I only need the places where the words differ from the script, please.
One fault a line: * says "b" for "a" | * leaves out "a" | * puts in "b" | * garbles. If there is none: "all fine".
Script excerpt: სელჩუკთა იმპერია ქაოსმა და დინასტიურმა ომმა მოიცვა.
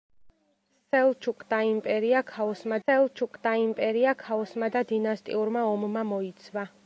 * puts in "სელჩუკთა იმპერია ქაოსმა"